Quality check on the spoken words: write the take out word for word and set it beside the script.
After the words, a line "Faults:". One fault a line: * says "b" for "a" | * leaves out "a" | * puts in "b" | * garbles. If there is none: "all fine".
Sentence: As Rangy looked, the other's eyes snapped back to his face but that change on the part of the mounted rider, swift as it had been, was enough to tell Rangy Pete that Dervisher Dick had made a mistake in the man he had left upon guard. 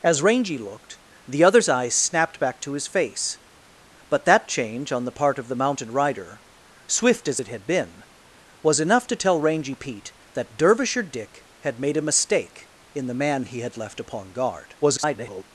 As Rangy looked, the other's eyes snapped back to his face but that change on the part of the mounted rider, swift as it had been, was enough to tell Rangy Pete that Dervisher Dick had made a mistake in the man he had left upon guard. [garbled]
Faults:
* garbles